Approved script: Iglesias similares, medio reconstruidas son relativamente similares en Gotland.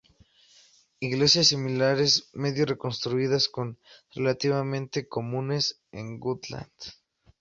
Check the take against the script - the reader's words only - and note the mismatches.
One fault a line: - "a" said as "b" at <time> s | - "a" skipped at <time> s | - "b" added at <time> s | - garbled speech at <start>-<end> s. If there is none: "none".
- "similares" said as "comunes" at 5.1 s